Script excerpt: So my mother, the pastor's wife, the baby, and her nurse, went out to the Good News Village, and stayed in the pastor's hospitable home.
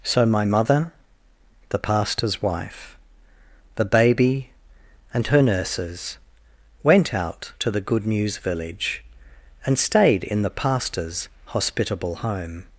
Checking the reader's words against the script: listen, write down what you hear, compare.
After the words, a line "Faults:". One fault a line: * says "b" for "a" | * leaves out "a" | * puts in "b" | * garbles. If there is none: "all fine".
So my mother, the pastor's wife, the baby, and her nurses, went out to the Good News Village, and stayed in the pastor's hospitable home.
Faults:
* says "nurses" for "nurse"